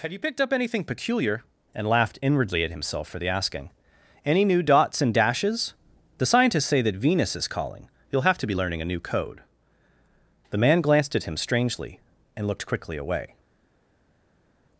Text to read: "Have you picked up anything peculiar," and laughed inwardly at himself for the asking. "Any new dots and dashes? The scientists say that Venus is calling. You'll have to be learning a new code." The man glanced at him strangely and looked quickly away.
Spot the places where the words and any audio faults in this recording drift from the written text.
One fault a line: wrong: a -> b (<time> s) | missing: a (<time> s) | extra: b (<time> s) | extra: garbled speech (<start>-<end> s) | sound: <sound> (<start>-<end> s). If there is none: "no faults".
no faults